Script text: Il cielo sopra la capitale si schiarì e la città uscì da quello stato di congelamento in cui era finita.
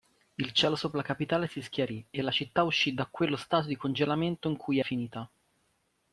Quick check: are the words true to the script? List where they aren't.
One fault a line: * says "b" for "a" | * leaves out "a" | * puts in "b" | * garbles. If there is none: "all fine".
* leaves out "era"